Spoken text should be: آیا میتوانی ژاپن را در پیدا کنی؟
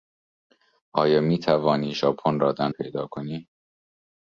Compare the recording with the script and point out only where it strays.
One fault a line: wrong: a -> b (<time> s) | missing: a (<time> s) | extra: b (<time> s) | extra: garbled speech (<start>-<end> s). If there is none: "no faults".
no faults